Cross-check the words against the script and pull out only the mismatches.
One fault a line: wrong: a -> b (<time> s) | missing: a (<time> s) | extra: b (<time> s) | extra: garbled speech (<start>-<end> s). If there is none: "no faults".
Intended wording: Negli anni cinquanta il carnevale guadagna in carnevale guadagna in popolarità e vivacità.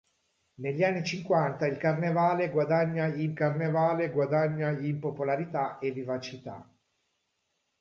no faults